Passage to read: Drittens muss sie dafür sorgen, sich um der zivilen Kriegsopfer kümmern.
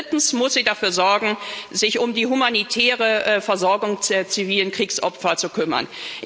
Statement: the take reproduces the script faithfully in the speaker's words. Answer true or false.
false